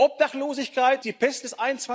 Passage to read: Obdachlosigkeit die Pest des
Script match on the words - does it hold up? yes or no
yes